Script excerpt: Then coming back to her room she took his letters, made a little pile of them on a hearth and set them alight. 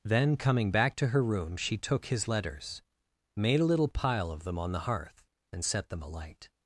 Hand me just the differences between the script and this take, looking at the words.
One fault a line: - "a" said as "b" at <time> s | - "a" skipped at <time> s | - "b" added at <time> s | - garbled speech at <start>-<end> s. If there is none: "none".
- "a" said as "the" at 4.7 s